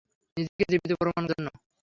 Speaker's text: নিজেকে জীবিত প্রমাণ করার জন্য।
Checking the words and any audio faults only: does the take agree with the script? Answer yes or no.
no